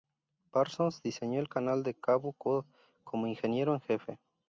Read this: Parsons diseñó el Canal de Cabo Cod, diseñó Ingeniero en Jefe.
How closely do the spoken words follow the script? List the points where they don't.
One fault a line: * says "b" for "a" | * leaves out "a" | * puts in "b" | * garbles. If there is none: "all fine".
* says "como" for "diseñó"